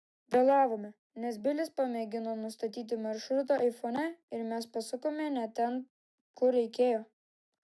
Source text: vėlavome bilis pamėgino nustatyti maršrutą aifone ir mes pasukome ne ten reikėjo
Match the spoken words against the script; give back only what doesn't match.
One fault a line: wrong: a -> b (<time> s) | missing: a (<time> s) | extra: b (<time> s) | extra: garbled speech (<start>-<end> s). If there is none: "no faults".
extra: nes (1.2 s)
extra: kur (6.4 s)